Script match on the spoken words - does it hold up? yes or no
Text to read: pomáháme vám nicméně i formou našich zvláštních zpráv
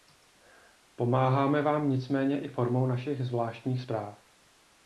yes